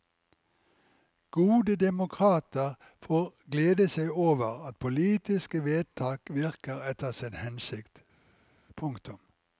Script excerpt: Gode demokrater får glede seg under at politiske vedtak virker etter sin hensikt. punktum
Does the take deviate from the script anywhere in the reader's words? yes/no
yes